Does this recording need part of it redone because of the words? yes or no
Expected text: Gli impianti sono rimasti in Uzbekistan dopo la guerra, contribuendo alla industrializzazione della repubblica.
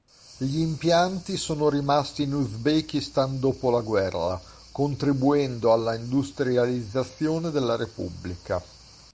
no